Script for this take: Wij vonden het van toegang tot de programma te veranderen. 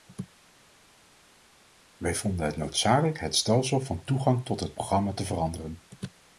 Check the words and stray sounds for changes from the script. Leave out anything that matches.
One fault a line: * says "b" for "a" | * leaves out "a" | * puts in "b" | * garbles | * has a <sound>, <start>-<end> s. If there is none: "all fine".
* puts in "noodzakelijk het stelsel"
* says "het" for "de"